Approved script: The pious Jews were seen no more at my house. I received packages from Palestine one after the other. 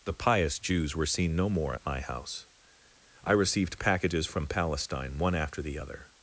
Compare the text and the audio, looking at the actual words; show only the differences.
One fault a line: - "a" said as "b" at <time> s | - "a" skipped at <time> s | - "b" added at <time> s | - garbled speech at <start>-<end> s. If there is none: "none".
none